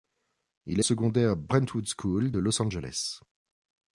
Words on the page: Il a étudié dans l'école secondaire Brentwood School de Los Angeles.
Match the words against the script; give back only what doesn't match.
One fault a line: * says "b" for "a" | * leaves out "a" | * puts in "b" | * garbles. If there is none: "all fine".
* leaves out "étudié dans l'école"